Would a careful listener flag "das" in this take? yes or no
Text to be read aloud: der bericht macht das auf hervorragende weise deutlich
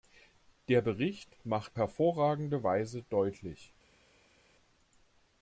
yes